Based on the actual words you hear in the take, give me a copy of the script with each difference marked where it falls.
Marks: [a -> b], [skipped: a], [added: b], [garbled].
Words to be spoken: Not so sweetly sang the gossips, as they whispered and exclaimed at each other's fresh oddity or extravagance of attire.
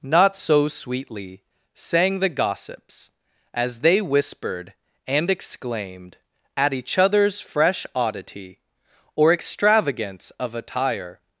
Not so sweetly sang the gossips, as they whispered and exclaimed at each other's fresh oddity or extravagance of attire.